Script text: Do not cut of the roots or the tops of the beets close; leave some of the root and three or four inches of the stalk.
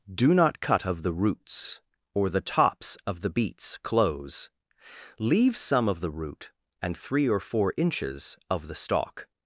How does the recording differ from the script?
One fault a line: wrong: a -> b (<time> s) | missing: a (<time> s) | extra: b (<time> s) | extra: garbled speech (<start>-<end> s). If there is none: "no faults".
no faults